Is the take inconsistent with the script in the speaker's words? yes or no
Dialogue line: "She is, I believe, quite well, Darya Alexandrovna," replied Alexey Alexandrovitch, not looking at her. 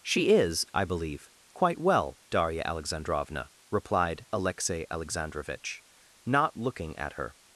no